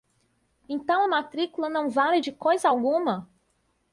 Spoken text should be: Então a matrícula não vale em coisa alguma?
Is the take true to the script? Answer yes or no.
no